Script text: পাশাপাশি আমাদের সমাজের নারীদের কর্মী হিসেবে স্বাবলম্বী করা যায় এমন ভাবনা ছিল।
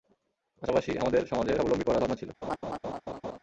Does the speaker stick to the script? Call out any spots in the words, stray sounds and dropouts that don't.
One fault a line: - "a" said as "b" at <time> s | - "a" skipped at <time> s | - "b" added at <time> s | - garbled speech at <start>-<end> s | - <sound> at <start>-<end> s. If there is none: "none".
- "নারীদের কর্মী হিসেবে" skipped at 1.6 s
- "যায় এমন" skipped at 2.0 s
- laugh at 2.4-3.4 s